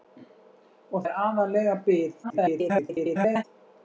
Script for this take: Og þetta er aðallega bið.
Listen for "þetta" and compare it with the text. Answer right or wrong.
wrong